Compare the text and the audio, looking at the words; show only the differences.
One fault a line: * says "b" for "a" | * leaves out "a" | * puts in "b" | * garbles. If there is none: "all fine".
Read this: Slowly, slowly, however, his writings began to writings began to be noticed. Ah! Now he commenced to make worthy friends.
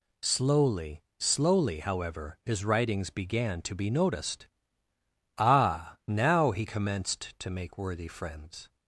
* leaves out "writings began to"